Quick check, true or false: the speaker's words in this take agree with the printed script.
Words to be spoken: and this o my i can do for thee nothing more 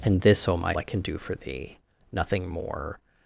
true